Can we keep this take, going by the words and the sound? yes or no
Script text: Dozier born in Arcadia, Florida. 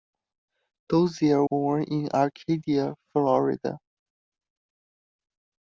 yes